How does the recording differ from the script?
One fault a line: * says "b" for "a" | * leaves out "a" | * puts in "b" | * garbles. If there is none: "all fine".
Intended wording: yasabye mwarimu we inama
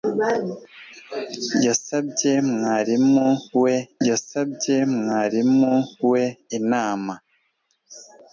* puts in "yasabye mwarimu we"